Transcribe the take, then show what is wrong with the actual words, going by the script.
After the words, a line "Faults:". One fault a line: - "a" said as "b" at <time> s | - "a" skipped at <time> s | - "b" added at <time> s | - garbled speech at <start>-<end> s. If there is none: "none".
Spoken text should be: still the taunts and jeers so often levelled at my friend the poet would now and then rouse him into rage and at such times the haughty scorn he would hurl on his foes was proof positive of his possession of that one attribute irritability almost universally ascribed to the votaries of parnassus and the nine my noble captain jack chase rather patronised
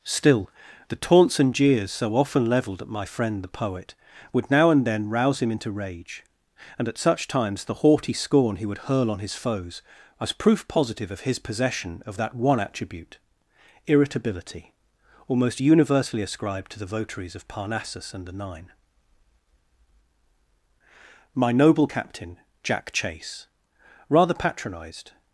still the taunts and jeers so often levelled at my friend the poet would now and then rouse him into rage and at such times the haughty scorn he would hurl on his foes was proof positive of his possession of that one attribute irritability almost universally ascribed to the votaries of parnassus and the nine my noble captain jack chase rather patronised
Faults:
none